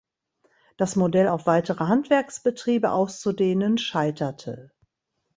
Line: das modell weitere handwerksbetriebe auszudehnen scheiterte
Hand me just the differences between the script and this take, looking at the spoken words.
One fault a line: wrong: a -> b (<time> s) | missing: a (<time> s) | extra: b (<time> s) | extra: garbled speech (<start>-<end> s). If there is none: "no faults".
extra: auf (1.2 s)